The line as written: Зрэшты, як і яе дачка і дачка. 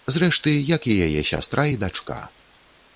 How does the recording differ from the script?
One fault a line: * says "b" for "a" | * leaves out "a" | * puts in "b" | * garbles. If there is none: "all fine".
* says "сястра" for "дачка"